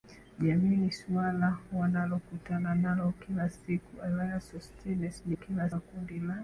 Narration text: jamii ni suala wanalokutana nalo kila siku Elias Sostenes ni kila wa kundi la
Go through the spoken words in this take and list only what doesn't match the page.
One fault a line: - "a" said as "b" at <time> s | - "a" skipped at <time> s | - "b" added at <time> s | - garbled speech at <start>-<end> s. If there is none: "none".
none